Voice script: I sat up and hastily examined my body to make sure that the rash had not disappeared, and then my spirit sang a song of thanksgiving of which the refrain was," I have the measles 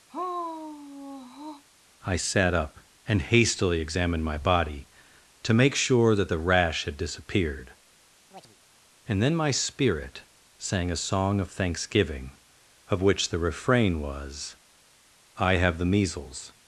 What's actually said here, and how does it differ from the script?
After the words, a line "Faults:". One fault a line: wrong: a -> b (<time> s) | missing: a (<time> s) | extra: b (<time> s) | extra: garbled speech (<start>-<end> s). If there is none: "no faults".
I sat up and hastily examined my body to make sure that the rash had disappeared, and then my spirit sang a song of thanksgiving of which the refrain was," I have the measles
Faults:
missing: not (7.0 s)